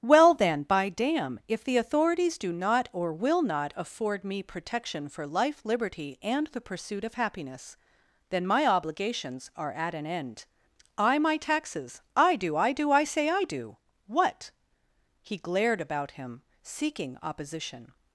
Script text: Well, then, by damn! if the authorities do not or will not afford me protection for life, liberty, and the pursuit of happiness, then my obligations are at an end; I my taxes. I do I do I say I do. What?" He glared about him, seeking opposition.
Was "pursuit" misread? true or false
false